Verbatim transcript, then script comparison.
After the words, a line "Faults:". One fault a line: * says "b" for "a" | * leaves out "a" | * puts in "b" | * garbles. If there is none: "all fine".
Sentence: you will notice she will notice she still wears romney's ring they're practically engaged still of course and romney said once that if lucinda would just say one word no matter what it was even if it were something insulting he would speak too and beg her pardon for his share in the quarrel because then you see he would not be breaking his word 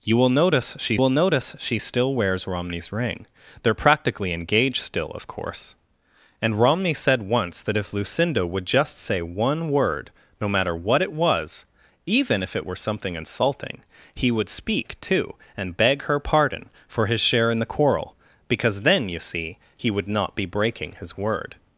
you will notice she will notice she still wears romney's ring they're practically engaged still of course and romney said once that if lucinda would just say one word no matter what it was even if it were something insulting he would speak too and beg her pardon for his share in the quarrel because then you see he would not be breaking his word
Faults:
all fine